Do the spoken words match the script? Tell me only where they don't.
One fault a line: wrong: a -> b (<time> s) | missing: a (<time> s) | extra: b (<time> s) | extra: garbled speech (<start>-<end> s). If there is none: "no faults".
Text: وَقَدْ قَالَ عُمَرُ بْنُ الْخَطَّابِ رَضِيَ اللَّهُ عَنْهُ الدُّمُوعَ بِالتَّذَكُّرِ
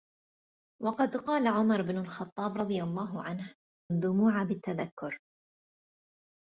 no faults